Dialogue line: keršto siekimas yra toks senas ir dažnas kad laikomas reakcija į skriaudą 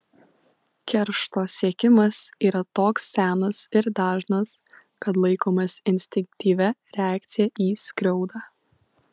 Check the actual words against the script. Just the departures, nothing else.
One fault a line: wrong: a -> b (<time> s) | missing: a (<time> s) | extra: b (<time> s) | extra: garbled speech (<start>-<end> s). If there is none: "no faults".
extra: instinktyvia (6.0 s)